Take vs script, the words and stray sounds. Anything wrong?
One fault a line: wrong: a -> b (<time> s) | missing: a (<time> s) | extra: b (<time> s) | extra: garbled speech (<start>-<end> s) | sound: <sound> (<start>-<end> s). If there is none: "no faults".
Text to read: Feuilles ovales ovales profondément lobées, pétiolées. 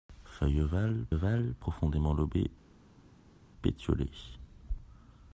no faults